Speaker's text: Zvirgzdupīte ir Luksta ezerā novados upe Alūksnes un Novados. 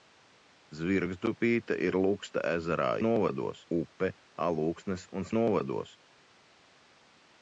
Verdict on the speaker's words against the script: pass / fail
pass